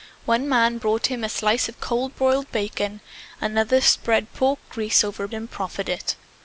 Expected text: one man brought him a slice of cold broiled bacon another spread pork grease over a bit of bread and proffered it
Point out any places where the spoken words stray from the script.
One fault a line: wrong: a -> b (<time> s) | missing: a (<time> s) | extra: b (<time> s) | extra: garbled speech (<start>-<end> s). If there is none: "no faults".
missing: bit of bread (5.3 s)